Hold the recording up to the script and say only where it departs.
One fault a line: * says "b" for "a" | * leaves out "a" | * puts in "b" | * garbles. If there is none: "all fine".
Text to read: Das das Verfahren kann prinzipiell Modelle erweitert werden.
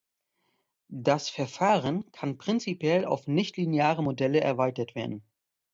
* leaves out "das"
* puts in "auf nichtlineare"